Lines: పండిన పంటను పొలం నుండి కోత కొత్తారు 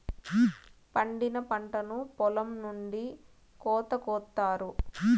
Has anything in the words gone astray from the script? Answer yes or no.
no